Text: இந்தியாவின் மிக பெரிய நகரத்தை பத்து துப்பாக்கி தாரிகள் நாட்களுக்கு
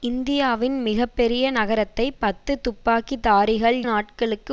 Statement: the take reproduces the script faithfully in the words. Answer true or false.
true